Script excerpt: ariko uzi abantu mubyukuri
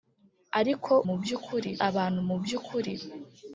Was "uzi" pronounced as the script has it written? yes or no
no